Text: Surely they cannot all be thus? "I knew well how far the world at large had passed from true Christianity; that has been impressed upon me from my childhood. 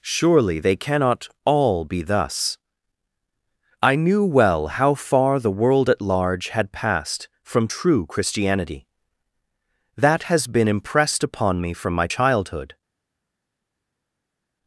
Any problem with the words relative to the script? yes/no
no